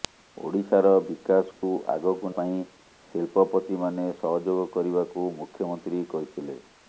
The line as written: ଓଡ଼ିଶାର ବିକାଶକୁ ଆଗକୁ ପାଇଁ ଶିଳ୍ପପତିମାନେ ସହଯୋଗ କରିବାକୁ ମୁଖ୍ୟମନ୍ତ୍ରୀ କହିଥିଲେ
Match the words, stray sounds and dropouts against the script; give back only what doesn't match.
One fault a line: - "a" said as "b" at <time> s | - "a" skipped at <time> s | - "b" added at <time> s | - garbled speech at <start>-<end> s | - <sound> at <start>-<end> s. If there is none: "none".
- dropout at 1.5-1.6 s